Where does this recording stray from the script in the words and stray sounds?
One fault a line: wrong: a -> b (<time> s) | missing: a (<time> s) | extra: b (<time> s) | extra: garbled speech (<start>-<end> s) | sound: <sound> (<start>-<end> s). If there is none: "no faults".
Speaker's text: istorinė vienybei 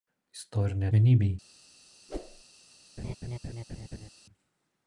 sound: whoosh (2.1-2.4 s)
sound: laugh (3.0-4.1 s)